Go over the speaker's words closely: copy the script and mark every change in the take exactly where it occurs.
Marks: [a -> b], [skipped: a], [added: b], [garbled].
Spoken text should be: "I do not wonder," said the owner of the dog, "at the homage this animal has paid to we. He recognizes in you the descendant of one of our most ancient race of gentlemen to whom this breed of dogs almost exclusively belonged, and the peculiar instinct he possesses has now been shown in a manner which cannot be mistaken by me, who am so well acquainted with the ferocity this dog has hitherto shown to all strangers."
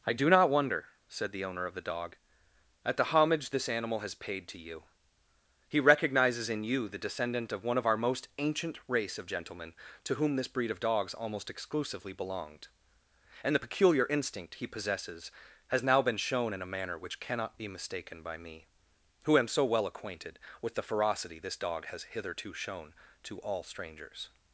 "I do not wonder," said the owner of the dog, "at the homage this animal has paid to [we. -> you] He recognizes in you the descendant of one of our most ancient race of gentlemen to whom this breed of dogs almost exclusively belonged, and the peculiar instinct he possesses has now been shown in a manner which cannot be mistaken by me, who am so well acquainted with the ferocity this dog has hitherto shown to all strangers."